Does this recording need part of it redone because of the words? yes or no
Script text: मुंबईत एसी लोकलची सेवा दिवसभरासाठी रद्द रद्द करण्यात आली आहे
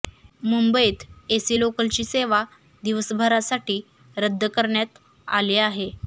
yes